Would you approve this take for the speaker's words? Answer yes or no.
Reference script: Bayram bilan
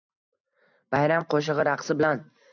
no